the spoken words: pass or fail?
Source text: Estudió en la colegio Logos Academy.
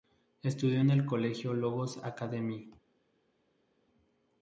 fail